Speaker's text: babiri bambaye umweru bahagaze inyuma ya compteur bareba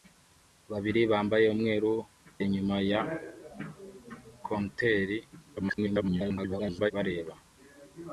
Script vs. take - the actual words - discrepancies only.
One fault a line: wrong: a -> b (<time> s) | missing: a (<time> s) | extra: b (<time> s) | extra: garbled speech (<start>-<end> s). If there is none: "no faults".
missing: bahagaze (1.9 s)
extra: garbled speech (5.6-6.9 s)